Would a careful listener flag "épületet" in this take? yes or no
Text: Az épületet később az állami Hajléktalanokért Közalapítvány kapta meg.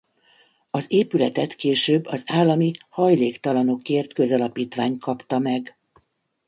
no